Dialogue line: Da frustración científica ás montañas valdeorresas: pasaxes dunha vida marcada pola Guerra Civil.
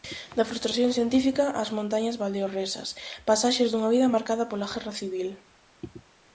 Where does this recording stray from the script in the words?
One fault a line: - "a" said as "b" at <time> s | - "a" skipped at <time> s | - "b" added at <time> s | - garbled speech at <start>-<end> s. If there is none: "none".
none